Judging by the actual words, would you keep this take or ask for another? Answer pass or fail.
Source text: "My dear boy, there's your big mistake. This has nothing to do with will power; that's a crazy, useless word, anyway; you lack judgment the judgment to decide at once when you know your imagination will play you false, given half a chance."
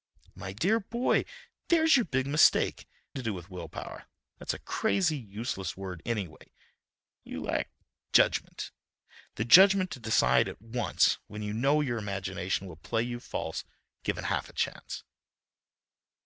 fail